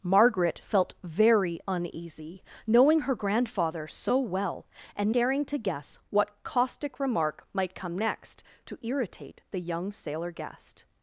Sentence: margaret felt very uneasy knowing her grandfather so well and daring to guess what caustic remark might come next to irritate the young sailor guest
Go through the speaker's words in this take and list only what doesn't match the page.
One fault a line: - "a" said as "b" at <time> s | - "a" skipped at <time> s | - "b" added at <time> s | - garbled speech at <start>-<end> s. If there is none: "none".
none